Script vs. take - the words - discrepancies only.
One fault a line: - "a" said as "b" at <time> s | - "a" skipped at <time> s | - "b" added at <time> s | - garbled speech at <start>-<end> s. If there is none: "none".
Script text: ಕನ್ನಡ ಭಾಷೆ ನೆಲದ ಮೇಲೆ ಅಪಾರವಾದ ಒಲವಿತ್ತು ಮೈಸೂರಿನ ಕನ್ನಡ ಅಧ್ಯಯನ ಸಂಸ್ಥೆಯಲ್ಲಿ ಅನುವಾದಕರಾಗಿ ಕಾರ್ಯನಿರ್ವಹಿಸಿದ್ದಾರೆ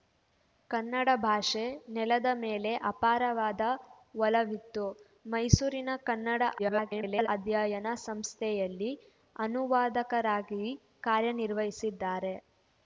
- garbled speech at 6.6-7.3 s